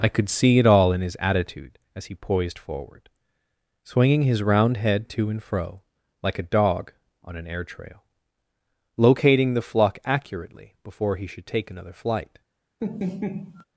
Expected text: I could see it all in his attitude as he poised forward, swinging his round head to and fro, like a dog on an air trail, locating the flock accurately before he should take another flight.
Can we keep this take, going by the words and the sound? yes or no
no